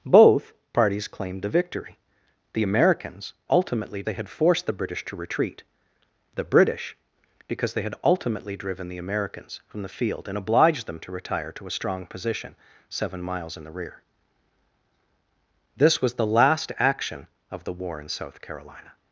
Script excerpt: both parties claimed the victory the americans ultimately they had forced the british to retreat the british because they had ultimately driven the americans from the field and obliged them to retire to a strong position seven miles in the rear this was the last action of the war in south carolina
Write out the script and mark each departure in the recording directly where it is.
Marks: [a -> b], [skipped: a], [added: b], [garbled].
both parties claimed the victory the americans ultimately they had forced the british to retreat the british because they had ultimately driven the americans from the field and obliged them to retire to a strong position seven miles in the rear this was the last action of the war in south carolina